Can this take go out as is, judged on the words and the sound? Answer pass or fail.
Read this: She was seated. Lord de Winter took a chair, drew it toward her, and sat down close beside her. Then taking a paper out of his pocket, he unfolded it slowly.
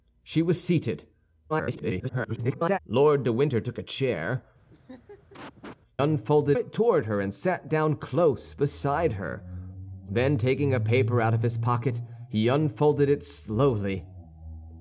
fail